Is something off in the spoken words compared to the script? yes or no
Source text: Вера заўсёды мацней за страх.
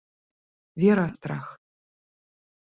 yes